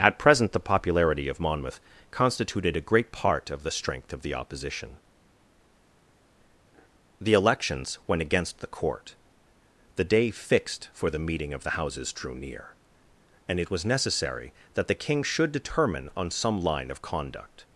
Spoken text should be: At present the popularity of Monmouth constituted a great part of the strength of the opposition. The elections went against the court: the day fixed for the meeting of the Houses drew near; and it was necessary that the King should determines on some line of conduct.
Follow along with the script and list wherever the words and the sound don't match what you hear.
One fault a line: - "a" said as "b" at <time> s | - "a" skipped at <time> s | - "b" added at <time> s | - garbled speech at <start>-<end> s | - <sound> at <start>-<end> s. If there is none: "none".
- "determines" said as "determine" at 15.5 s